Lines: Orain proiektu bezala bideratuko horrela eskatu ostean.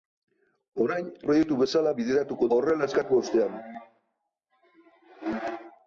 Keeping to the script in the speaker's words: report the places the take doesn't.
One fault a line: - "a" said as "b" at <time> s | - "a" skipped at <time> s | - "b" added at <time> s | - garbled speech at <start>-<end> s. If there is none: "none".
none